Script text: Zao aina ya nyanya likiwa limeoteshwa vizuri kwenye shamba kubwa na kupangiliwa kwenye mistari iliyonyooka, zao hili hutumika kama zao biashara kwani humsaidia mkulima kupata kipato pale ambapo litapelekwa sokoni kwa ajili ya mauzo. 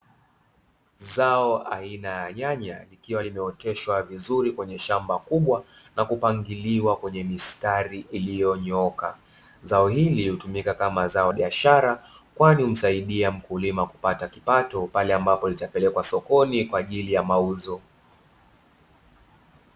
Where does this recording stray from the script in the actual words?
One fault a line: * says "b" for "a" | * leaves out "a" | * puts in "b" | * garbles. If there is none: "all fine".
all fine